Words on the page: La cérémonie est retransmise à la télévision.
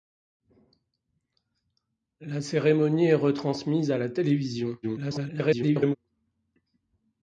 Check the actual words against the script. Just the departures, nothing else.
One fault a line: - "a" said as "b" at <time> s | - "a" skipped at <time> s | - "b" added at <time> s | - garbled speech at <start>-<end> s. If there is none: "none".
- garbled speech at 4.8-6.0 s